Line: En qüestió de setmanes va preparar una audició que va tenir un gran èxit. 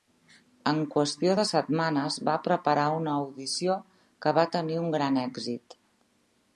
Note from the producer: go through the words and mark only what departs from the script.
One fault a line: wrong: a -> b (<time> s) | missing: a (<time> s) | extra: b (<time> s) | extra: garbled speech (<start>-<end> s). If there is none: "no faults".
no faults